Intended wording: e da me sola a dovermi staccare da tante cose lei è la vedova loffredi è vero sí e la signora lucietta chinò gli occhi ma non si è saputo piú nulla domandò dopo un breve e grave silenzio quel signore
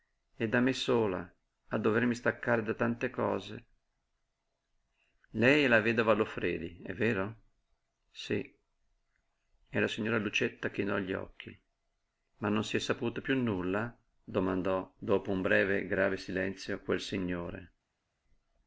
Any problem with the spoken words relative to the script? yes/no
no